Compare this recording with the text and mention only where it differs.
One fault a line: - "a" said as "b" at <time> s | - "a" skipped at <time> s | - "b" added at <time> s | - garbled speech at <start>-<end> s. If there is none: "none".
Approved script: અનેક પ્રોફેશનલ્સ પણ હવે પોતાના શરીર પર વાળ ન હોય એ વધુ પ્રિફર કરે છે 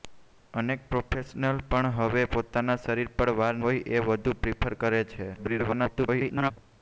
- "ન" skipped at 3.6 s
- garbled speech at 5.3-6.5 s